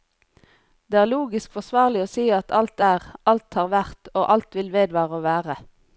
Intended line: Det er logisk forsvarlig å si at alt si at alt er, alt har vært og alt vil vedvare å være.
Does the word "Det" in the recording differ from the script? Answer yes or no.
no